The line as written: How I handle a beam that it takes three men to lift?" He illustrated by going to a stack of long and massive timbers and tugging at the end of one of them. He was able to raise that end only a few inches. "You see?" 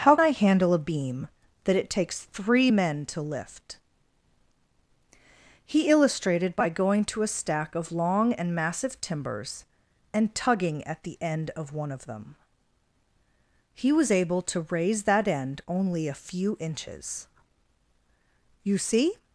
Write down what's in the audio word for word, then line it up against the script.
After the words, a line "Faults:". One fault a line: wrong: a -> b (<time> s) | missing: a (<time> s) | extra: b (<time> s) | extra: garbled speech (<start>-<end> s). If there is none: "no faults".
How I handle a beam that it takes three men to lift?" He illustrated by going to a stack of long and massive timbers and tugging at the end of one of them. He was able to raise that end only a few inches. "You see?"
Faults:
no faults